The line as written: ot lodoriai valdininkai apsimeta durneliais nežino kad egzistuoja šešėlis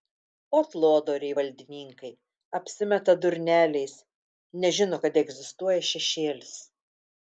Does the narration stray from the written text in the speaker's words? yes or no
no